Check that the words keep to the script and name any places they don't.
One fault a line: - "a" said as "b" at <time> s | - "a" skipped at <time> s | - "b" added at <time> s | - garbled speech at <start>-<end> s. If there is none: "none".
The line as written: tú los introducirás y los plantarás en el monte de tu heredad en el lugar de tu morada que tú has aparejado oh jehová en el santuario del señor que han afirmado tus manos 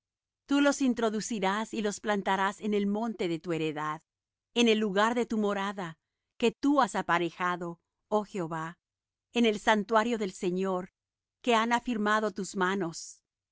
none